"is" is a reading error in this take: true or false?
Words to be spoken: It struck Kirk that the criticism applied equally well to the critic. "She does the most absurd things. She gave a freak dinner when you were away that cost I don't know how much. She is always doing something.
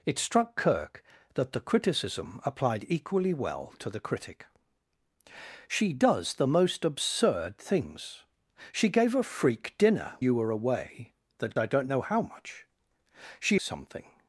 true